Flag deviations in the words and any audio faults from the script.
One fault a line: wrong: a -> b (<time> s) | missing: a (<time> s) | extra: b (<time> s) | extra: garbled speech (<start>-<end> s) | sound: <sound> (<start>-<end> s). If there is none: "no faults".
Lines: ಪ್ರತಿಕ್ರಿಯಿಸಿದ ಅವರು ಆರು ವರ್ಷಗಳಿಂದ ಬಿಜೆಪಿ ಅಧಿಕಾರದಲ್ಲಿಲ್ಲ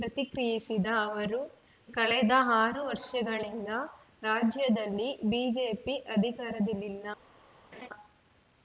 extra: ಕಳೆದ (1.9 s)
extra: ರಾಜ್ಯದಲ್ಲಿ (4.2 s)
sound: laugh (7.7-7.9 s)